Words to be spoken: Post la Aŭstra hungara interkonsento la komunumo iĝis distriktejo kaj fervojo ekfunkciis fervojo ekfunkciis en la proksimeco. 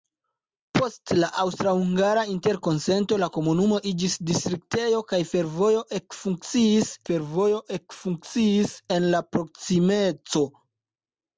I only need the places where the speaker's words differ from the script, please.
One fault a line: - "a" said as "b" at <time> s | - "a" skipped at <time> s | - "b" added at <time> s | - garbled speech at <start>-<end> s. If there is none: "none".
none